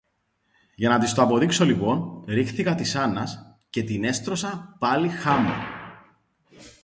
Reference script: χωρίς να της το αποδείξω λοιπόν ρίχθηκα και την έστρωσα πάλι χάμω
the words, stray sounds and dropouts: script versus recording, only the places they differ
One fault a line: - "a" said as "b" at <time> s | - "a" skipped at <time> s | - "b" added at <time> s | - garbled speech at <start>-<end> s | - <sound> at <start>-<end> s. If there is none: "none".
- "χωρίς" said as "για" at 0.8 s
- "της άννας" added at 2.8 s